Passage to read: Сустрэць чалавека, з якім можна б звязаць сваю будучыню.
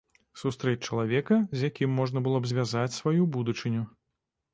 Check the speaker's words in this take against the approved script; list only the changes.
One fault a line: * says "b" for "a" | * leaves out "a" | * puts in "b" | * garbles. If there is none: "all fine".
* puts in "было"